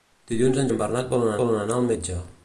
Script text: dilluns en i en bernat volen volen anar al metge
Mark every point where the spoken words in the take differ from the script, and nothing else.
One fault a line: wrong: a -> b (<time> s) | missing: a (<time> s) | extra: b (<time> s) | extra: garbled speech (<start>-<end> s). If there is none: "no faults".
no faults